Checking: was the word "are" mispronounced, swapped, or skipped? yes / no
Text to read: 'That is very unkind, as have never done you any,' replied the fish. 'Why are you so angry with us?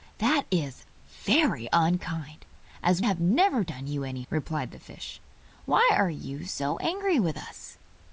no